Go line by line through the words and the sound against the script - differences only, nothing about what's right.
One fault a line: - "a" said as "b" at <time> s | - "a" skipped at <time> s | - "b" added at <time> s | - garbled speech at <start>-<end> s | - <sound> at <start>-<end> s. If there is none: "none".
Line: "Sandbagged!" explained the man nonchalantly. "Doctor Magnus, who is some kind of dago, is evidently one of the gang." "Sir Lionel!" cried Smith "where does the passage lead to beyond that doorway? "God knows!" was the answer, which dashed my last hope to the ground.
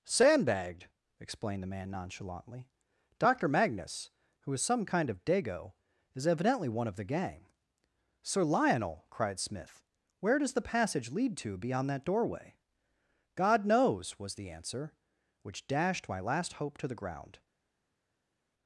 none